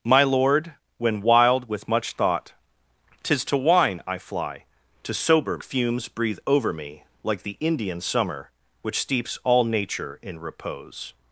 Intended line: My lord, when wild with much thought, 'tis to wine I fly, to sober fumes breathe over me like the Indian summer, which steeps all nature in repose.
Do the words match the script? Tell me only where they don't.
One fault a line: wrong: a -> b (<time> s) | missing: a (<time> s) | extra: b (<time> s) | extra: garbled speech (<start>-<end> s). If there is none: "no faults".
no faults